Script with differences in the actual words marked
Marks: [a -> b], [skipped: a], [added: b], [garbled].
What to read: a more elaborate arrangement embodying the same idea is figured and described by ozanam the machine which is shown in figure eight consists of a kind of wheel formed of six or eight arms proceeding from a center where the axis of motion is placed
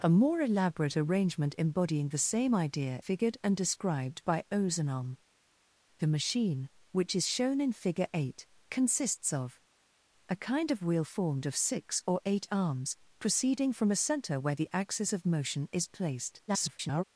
a more elaborate arrangement embodying the same idea [skipped: is] figured and described by ozanam the machine which is shown in figure eight consists of a kind of wheel formed of six or eight arms proceeding from a center where the axis of motion is placed [garbled]